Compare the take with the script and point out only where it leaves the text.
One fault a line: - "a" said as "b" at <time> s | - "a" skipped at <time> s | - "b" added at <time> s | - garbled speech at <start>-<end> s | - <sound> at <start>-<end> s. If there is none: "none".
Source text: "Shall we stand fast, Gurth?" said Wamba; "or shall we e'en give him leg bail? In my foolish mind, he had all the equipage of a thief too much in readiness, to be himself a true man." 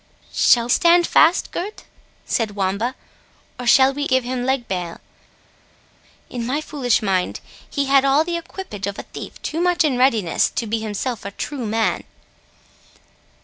- "we" skipped at 0.7 s
- "e'en" skipped at 4.0 s